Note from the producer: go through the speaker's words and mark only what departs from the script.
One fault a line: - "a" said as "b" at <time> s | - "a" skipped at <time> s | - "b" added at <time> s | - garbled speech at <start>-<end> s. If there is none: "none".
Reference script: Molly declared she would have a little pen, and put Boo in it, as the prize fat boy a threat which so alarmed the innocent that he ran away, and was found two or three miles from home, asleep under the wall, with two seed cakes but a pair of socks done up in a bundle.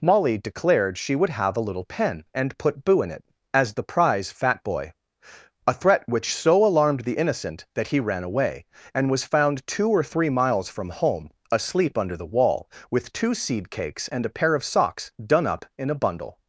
- "but" said as "and" at 14.1 s